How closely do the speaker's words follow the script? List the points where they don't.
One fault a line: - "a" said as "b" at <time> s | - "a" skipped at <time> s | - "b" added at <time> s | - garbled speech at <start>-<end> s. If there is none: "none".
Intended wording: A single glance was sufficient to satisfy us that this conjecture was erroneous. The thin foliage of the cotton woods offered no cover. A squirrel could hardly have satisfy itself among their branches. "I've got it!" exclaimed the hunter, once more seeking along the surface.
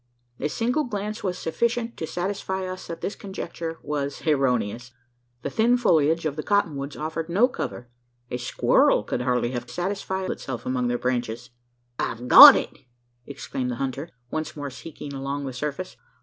none